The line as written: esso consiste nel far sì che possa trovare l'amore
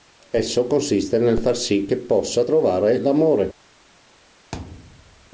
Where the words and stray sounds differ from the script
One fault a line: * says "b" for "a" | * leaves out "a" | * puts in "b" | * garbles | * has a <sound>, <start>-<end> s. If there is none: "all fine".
* has a thud, 4.5-5.3 s